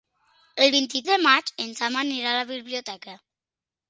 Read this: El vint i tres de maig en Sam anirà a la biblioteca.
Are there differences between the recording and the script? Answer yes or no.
yes